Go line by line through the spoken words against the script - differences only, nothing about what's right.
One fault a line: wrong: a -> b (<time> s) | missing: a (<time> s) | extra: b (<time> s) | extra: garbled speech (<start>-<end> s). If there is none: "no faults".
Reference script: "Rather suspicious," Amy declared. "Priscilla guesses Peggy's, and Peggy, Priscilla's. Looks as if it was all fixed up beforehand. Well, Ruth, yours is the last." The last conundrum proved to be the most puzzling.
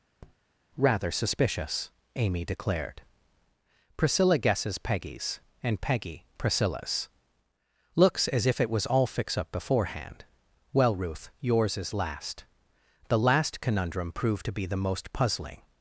wrong: fixed -> fix (9.1 s)
missing: the (11.9 s)